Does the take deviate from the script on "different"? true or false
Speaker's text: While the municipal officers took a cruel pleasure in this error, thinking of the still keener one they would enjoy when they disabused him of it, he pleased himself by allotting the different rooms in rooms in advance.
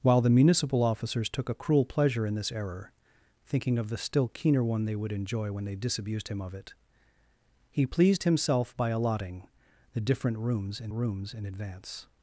false